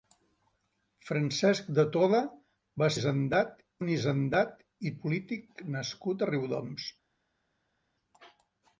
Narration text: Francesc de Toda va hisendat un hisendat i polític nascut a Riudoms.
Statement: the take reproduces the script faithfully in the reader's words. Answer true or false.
true